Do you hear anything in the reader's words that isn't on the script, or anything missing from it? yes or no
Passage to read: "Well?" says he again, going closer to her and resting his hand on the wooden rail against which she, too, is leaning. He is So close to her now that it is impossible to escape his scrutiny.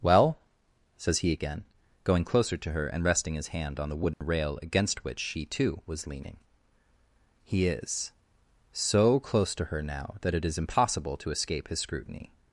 yes